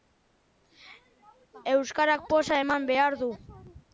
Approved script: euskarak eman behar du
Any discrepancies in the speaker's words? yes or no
yes